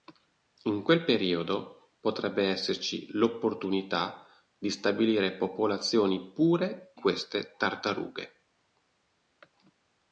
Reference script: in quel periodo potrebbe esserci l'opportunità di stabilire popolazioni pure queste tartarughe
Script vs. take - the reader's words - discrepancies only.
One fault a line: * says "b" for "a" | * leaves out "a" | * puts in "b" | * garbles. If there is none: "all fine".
all fine